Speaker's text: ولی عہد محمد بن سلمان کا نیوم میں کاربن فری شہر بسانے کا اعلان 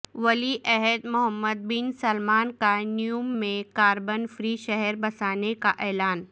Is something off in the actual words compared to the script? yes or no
no